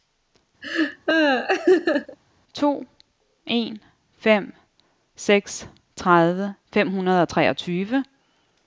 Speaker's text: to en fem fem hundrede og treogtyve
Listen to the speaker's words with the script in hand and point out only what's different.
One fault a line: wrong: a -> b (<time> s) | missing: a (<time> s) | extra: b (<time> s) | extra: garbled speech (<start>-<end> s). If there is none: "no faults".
extra: seks tredive (5.1 s)